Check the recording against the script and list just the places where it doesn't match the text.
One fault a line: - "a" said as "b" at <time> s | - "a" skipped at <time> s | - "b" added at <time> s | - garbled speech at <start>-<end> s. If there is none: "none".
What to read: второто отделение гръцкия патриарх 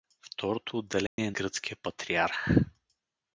none